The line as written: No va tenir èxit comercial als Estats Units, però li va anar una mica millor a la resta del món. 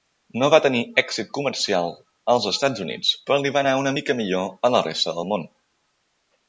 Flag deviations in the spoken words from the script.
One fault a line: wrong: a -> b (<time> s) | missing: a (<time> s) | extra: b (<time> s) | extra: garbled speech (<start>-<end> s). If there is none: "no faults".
no faults